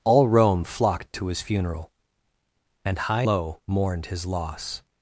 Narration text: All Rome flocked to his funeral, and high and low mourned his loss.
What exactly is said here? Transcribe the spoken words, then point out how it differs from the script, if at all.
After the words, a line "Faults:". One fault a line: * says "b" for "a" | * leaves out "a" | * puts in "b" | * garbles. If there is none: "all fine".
All Rome flocked to his funeral, and high low mourned his loss.
Faults:
* leaves out "and"